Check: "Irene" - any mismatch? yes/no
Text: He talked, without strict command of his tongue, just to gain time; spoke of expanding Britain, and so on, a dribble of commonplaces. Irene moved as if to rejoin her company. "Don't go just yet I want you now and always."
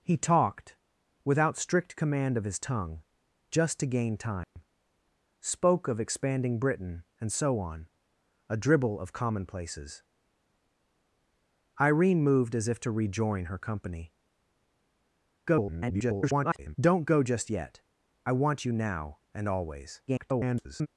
no